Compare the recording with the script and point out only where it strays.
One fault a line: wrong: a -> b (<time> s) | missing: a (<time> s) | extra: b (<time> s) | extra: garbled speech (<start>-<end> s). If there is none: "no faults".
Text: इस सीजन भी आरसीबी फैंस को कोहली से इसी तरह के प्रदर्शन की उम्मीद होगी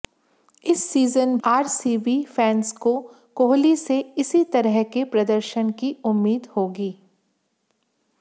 missing: भी (1.4 s)